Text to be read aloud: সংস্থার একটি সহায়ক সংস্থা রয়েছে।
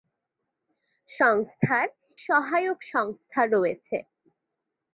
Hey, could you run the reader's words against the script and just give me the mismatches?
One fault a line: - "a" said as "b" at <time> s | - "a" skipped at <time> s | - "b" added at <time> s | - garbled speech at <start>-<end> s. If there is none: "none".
- "একটি" skipped at 1.9 s